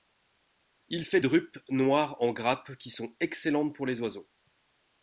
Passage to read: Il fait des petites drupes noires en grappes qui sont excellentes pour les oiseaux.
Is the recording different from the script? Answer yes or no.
yes